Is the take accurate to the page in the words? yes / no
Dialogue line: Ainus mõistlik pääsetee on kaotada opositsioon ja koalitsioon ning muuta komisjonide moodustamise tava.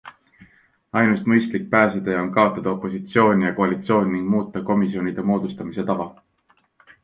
yes